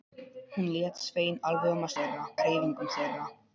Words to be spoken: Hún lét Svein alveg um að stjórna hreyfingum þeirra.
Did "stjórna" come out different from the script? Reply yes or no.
yes